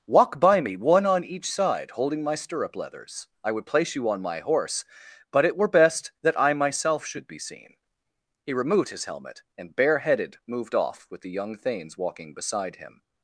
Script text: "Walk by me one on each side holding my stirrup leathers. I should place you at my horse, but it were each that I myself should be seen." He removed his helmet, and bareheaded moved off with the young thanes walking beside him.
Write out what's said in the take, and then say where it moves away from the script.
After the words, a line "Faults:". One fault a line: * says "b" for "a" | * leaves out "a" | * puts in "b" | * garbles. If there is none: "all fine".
"Walk by me one on each side holding my stirrup leathers. I would place you on my horse, but it were best that I myself should be seen." He removed his helmet, and bareheaded moved off with the young thanes walking beside him.
Faults:
* says "would" for "should"
* says "on" for "at"
* says "best" for "each"